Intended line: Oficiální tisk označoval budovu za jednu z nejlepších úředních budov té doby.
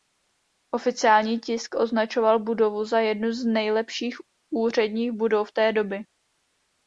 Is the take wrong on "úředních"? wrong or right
right